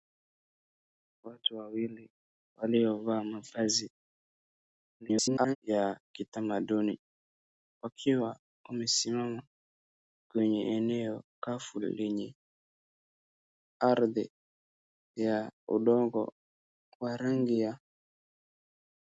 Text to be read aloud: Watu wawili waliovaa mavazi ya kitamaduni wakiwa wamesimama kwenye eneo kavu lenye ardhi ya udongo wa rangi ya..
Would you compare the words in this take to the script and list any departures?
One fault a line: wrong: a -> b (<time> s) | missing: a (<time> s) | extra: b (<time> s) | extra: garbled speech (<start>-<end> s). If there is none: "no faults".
extra: garbled speech (5.0-5.6 s)